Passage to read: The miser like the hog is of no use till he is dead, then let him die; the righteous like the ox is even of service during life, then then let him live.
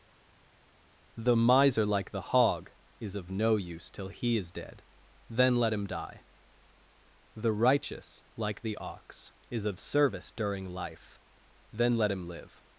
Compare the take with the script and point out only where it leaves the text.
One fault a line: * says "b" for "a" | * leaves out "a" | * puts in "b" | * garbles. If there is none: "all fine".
* leaves out "even"
* leaves out "then"